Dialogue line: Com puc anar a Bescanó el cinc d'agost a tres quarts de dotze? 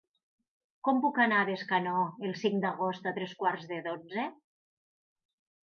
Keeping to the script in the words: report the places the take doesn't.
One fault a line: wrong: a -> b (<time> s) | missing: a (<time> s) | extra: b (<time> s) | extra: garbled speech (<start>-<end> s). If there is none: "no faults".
no faults